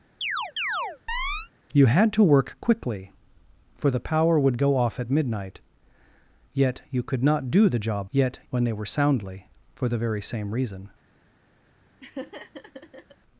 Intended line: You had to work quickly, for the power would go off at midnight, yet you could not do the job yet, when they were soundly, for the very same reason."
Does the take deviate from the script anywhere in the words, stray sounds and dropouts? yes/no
yes